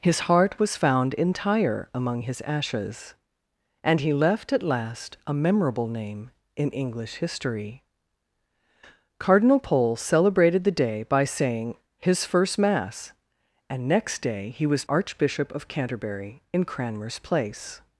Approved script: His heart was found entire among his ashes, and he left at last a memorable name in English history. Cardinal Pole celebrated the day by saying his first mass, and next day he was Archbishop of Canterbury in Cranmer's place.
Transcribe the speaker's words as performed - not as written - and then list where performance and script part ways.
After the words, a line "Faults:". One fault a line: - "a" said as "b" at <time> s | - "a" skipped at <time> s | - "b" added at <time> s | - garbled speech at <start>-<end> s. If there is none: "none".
His heart was found entire among his ashes, and he left at last a memorable name in English history. Cardinal Pole celebrated the day by saying his first mass, and next day he was Archbishop of Canterbury in Cranmer's place.
Faults:
none